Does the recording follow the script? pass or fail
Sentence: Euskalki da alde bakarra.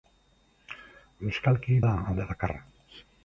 pass